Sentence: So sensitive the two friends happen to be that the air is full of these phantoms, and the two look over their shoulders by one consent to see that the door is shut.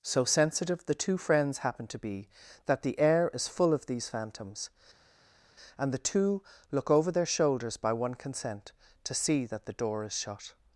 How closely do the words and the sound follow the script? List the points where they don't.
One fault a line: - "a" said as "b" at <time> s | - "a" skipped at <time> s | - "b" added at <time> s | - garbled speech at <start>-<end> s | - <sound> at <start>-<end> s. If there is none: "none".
none